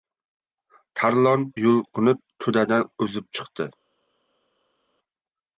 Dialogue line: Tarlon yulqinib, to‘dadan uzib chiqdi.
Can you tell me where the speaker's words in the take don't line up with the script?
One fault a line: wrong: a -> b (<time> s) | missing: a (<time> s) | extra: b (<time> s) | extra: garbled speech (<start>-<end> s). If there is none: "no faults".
no faults